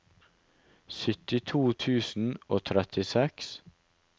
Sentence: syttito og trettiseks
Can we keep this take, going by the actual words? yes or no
no